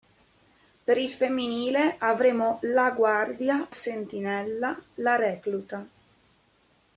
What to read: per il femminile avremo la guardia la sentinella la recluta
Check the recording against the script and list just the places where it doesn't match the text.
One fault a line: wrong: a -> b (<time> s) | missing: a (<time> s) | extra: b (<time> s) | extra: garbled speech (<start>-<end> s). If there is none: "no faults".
missing: la (3.7 s)